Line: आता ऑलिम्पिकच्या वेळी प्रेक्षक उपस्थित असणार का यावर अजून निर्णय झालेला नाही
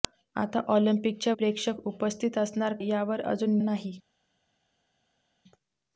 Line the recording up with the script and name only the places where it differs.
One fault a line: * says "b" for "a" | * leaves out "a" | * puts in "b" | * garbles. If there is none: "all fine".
* leaves out "वेळी"
* leaves out "का"
* leaves out "निर्णय झालेला"